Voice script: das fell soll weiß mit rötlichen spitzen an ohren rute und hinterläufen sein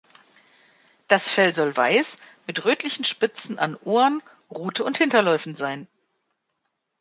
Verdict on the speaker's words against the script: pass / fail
pass